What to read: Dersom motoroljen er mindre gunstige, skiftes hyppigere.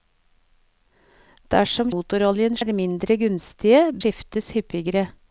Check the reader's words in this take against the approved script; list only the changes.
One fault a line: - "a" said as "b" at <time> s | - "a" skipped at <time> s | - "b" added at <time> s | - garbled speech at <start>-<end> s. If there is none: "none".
none